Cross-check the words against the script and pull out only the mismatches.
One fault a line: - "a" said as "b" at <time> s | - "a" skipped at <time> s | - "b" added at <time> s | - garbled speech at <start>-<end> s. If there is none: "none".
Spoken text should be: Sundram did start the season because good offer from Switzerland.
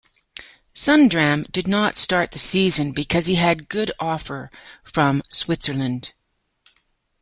- "not" added at 1.7 s
- "he had" added at 3.3 s